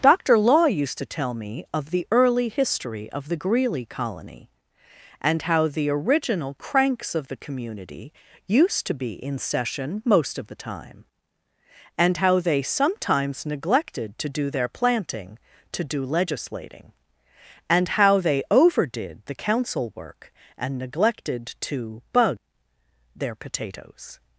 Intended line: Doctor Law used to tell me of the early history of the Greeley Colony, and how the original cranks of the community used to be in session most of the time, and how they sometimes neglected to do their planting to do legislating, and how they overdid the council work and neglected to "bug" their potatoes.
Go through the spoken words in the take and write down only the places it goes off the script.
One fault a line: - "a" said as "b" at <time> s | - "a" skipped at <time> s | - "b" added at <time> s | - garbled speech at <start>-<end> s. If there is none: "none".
none